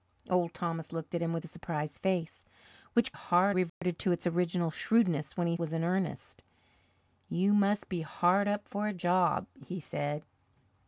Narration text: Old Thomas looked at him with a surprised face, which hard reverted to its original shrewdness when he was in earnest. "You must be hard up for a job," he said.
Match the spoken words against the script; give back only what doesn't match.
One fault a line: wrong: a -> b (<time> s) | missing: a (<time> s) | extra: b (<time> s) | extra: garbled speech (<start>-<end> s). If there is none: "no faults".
no faults